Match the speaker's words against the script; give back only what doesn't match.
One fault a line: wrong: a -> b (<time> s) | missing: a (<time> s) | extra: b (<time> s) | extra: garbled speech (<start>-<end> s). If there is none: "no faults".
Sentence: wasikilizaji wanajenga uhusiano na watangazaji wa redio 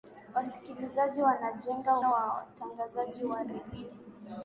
missing: uhusiano (2.0 s)